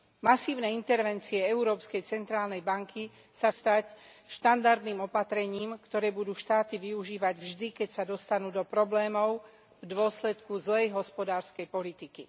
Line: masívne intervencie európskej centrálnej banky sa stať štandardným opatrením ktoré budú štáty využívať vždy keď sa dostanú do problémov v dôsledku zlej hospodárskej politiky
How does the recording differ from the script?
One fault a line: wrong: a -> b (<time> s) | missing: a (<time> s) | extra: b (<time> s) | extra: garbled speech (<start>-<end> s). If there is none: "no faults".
no faults